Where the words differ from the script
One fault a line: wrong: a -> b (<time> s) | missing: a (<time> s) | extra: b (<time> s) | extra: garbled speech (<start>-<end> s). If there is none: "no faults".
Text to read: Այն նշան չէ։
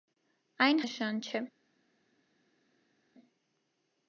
no faults